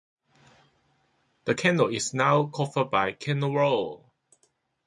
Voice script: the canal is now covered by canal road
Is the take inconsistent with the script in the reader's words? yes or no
no